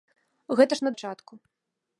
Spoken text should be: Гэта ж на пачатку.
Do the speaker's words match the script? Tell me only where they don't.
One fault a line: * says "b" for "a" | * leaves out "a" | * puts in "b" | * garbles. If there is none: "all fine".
all fine